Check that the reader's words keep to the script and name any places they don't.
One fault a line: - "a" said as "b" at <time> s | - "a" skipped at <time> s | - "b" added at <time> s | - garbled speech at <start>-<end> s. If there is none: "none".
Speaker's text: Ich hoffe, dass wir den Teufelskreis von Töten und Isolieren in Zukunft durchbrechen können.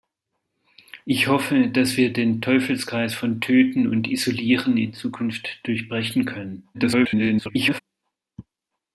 - garbled speech at 6.7-7.8 s